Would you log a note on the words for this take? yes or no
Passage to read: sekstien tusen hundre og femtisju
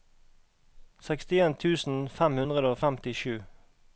yes